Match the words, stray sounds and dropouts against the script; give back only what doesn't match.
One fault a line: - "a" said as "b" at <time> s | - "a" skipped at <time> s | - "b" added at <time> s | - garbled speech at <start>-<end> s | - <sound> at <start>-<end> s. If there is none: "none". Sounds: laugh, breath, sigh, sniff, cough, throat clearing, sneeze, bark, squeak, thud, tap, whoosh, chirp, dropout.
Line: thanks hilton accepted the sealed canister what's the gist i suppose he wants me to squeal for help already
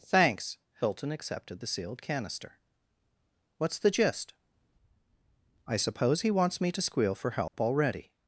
- dropout at 7.5-7.5 s